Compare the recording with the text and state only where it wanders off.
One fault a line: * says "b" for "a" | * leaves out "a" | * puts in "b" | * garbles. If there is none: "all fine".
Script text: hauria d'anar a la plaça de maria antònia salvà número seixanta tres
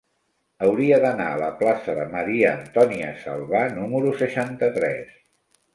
all fine